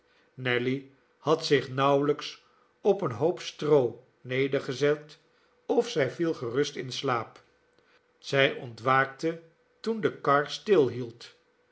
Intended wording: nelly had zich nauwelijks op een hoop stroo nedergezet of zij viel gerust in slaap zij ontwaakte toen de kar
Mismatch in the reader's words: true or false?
false